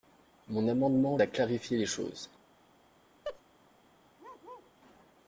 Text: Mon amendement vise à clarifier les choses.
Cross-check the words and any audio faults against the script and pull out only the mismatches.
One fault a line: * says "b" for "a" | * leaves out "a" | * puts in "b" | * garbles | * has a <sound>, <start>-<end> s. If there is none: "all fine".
* leaves out "vise"
* has a laugh, 3.2-3.4 s
* has a bark, 4.2-4.7 s